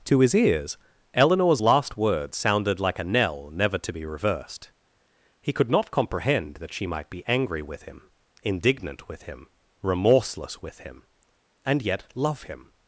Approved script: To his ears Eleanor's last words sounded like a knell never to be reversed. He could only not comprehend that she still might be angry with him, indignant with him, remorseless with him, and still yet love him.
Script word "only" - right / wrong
wrong